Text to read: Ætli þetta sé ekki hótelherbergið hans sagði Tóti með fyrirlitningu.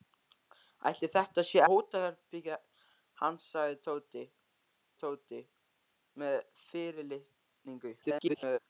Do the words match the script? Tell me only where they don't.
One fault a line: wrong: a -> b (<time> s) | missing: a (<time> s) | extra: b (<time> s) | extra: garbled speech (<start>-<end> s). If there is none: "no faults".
missing: ekki (1.6 s)
extra: Tóti (5.0 s)
extra: garbled speech (8.0-8.6 s)